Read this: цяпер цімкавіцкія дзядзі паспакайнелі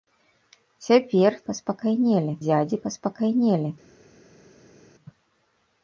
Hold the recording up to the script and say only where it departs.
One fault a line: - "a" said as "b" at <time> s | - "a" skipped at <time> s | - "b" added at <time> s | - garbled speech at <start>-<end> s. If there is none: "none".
- "цімкавіцкія" said as "паспакайнелі" at 1.5 s